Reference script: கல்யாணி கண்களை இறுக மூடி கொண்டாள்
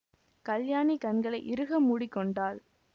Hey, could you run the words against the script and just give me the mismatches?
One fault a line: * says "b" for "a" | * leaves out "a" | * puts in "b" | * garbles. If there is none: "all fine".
all fine